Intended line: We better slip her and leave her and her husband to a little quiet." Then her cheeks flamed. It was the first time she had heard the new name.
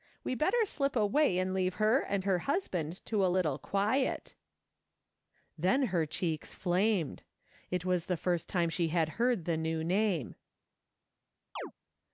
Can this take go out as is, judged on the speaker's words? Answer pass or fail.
fail